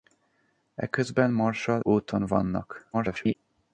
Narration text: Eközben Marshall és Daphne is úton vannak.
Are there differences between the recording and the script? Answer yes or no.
yes